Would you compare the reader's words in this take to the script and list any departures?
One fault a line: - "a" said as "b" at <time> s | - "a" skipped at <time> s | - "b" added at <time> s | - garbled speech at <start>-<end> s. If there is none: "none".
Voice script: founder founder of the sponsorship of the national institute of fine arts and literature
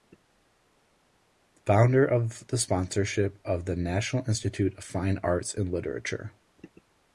- "founder" skipped at 2.0 s